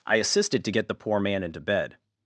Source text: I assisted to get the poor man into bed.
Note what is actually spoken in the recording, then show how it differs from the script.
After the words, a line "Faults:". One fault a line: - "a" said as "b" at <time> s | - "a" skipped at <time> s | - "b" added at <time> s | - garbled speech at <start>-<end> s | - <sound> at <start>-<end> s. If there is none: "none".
I assisted to get the poor man into bed.
Faults:
none